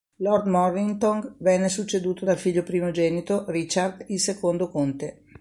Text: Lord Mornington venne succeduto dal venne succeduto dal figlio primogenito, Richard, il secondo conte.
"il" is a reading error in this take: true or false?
false